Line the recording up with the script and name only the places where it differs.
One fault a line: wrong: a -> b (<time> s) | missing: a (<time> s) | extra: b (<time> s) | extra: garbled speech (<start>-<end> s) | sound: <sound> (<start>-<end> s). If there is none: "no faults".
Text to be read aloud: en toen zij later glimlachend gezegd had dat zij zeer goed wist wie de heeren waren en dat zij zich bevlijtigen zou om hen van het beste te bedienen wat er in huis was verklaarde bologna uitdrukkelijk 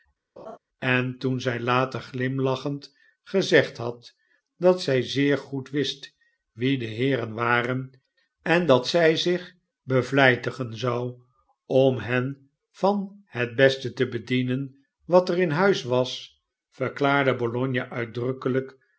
sound: laugh (0.4-0.6 s)